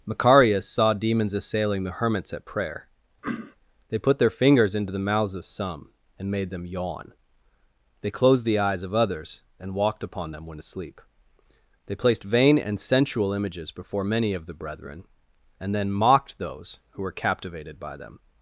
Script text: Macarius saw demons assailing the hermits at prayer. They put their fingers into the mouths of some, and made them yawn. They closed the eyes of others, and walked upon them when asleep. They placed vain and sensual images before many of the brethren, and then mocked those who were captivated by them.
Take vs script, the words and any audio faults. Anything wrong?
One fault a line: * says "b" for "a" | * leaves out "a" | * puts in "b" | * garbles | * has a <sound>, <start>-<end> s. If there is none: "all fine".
* has a throat clearing, 3.2-3.6 s